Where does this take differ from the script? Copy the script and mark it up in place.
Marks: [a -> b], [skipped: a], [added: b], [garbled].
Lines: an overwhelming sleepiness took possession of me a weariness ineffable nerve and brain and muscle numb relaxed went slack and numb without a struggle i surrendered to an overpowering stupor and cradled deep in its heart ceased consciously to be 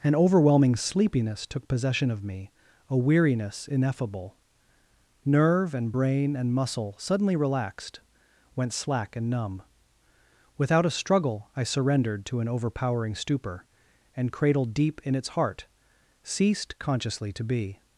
an overwhelming sleepiness took possession of me a weariness ineffable nerve and brain and muscle [numb -> suddenly] relaxed went slack and numb without a struggle i surrendered to an overpowering stupor and cradled deep in its heart ceased consciously to be